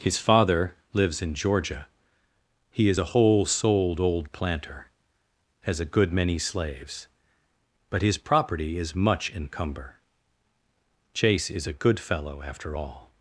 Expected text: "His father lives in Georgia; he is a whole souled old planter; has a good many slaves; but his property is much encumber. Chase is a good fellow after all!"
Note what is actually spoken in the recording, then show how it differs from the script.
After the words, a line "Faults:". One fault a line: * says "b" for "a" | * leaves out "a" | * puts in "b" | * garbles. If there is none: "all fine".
"His father lives in Georgia; he is a whole souled old planter; has a good many slaves; but his property is much encumber. Chase is a good fellow after all!"
Faults:
all fine